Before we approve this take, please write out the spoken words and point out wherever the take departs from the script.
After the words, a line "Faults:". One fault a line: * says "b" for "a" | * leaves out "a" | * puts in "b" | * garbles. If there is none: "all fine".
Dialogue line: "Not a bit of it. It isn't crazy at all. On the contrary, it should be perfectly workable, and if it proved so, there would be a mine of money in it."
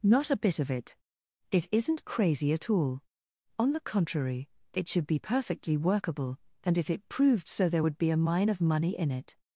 "Not a bit of it. It isn't crazy at all. On the contrary, it should be perfectly workable, and if it proved so, there would be a mine of money in it."
Faults:
all fine